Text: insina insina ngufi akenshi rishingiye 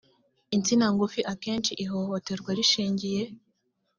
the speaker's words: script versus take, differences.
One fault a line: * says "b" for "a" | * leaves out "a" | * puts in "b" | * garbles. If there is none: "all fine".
* leaves out "insina"
* puts in "ihohoterwa"